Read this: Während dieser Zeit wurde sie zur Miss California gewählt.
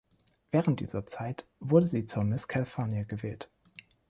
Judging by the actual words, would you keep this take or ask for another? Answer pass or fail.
pass